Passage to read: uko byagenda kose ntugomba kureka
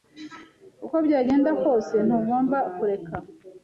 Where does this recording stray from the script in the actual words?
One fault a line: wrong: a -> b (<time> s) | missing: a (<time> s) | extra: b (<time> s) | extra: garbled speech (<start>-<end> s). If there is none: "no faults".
no faults